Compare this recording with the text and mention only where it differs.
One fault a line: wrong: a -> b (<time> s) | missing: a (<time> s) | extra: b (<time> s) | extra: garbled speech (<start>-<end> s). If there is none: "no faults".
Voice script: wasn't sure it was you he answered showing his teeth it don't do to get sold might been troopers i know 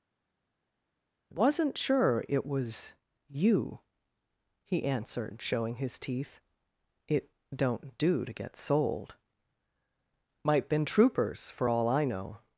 extra: for all (11.5 s)